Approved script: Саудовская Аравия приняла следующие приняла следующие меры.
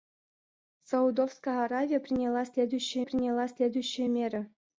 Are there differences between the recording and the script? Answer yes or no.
no